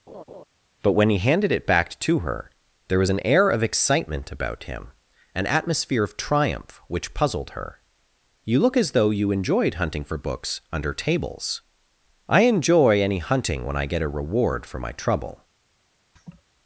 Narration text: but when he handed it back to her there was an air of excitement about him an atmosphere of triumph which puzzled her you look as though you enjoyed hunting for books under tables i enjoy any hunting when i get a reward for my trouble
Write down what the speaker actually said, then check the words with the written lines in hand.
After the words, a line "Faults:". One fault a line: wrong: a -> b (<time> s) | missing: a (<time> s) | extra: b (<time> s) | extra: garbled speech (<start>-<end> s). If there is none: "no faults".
but when he handed it back to her there was an air of excitement about him an atmosphere of triumph which puzzled her you look as though you enjoyed hunting for books under tables i enjoy any hunting when i get a reward for my trouble
Faults:
no faults